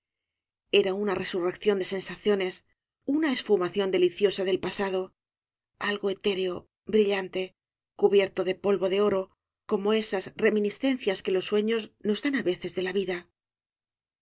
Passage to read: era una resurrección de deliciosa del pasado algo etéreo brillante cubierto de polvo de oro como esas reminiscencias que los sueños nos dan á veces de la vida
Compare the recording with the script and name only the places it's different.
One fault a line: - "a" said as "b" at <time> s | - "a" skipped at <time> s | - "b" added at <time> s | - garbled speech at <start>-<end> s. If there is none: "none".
- "sensaciones una esfumación" added at 1.8 s